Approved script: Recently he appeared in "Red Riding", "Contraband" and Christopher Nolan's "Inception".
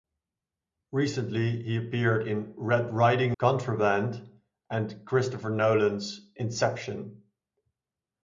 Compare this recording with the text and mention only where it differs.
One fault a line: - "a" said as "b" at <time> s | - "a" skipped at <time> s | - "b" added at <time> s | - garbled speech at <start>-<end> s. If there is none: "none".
none